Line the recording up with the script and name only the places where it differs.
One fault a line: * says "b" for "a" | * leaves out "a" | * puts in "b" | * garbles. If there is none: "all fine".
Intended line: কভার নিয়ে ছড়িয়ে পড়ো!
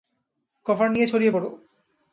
all fine